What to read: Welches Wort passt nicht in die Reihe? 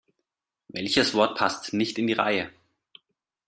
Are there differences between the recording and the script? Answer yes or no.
no